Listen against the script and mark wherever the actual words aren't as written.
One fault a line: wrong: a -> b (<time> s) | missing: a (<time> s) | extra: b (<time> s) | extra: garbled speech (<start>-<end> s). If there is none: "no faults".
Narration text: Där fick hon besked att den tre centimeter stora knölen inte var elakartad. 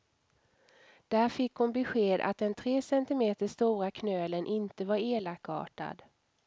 no faults